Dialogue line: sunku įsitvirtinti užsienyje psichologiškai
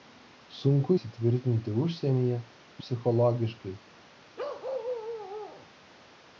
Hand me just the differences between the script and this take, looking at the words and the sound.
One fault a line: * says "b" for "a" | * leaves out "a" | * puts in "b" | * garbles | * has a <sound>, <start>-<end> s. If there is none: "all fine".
* has a bark, 4.4-5.7 s